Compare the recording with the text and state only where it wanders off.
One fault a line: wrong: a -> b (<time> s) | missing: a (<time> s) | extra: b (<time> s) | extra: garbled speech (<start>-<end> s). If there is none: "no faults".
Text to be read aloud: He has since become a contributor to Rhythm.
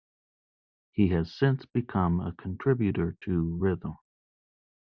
no faults